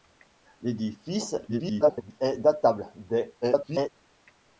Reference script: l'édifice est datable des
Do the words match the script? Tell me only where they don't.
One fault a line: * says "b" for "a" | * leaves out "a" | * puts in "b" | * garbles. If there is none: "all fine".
* garbles
* garbles